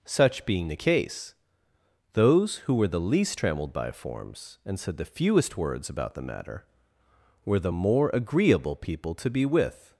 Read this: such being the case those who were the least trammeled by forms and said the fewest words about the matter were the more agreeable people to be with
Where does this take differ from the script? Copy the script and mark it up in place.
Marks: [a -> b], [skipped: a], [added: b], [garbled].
such being the case those who were the least trammeled by forms and said the fewest words about the matter were the more agreeable people to be with